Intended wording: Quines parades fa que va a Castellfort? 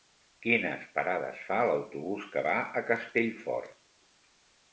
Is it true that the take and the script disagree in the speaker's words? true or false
true